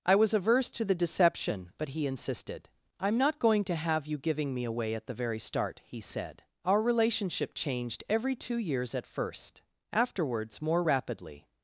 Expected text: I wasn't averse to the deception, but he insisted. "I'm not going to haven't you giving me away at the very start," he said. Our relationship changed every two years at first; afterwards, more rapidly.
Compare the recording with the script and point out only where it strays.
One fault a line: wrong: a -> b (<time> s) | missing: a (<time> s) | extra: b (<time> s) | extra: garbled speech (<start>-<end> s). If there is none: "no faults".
wrong: wasn't -> was (0.1 s)
wrong: haven't -> have (3.8 s)